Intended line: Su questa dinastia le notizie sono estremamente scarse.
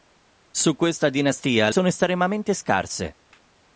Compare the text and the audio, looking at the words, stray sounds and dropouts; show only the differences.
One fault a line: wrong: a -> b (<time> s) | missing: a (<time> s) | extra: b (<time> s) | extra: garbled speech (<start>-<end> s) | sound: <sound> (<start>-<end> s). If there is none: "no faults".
missing: le notizie (1.7 s)